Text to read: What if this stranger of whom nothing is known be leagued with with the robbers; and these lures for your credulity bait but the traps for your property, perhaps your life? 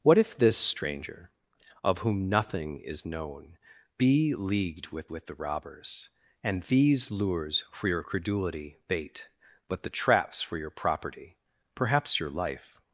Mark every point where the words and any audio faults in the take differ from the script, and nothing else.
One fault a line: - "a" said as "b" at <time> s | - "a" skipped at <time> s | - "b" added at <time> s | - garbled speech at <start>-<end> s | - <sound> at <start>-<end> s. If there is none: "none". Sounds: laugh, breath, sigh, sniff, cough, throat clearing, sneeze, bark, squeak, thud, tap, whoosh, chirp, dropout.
none